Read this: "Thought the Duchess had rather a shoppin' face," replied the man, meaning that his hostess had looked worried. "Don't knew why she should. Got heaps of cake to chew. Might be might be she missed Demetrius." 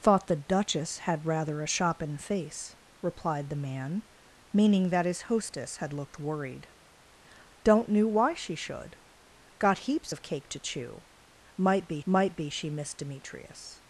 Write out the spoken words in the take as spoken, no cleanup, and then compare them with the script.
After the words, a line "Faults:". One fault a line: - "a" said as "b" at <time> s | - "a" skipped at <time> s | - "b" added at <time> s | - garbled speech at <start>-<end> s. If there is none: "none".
"Thought the Duchess had rather a shoppin' face," replied the man, meaning that his hostess had looked worried. "Don't knew why she should. Got heaps of cake to chew. Might be might be she missed Demetrius."
Faults:
none